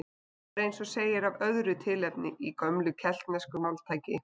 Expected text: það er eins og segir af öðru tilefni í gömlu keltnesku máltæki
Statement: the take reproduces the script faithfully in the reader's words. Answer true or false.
true